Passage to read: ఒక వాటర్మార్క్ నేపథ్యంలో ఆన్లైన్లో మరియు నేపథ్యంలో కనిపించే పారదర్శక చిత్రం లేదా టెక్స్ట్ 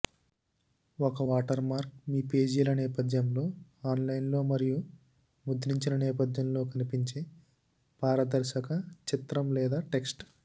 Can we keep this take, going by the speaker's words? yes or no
no